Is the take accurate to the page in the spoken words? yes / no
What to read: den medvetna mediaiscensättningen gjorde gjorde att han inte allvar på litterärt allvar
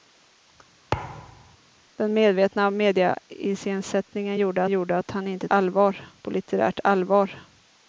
yes